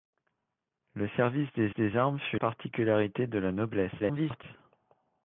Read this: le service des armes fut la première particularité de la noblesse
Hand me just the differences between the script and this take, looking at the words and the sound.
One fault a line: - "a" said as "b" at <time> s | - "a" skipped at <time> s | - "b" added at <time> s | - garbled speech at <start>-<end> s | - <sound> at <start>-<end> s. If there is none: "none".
- "des" added at 1.7 s
- "la première" skipped at 2.4 s
- garbled speech at 4.0-4.4 s